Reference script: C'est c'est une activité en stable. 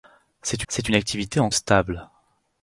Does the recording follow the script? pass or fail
pass